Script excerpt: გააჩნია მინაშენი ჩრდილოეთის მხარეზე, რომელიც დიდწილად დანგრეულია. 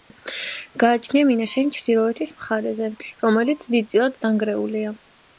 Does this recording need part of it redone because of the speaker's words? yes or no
no